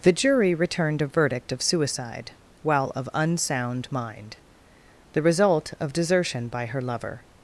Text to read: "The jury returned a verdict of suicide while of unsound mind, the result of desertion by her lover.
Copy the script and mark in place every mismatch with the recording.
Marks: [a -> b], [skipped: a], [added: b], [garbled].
"The jury returned a verdict of suicide while of unsound mind, the result of desertion by her lover.